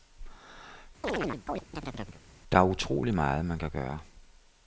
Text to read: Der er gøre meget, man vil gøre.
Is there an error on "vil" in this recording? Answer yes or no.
yes